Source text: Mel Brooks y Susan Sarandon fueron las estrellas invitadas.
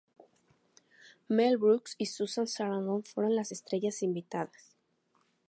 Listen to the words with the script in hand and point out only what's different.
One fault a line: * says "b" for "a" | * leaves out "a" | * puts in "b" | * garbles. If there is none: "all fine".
all fine